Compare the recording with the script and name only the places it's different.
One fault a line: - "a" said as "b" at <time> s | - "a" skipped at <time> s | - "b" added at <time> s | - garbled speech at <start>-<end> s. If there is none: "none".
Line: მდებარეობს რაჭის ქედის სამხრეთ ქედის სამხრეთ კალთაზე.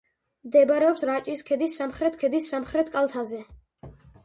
none